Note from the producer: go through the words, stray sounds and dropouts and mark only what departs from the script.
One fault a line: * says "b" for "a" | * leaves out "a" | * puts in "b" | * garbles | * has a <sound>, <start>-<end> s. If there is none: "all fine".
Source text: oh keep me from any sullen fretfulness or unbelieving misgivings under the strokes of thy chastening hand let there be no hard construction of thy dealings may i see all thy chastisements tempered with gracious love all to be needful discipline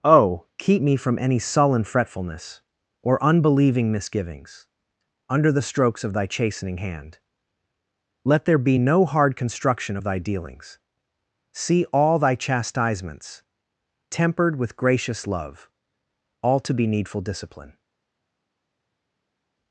* leaves out "may i"